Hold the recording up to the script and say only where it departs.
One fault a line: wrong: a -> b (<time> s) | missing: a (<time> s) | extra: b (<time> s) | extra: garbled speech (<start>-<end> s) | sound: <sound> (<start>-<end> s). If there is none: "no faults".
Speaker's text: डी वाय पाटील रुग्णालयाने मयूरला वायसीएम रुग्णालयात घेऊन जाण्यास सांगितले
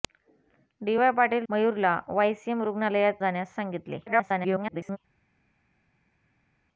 missing: रुग्णालयाने (1.5 s)
missing: घेऊन (3.2 s)
extra: garbled speech (4.1-5.0 s)